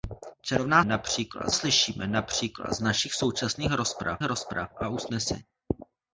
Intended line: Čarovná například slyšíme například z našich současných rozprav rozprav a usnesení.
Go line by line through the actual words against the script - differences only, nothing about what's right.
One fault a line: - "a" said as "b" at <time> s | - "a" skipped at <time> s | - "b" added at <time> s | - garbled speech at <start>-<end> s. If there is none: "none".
none